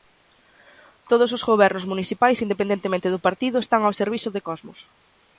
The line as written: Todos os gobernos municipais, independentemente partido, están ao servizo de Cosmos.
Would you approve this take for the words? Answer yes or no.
no